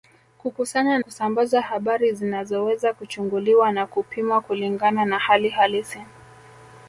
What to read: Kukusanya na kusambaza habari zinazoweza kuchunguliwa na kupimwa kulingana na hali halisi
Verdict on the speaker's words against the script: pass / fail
fail